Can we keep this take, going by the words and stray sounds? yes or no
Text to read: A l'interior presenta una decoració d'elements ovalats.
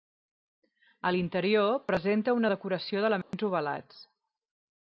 no